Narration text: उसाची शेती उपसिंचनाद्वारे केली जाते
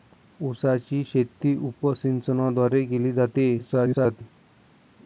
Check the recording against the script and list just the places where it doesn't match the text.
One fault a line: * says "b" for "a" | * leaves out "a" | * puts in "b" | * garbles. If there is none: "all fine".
* garbles